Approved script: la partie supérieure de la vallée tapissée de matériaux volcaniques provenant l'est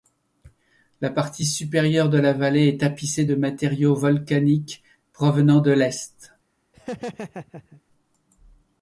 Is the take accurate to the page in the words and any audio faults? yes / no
no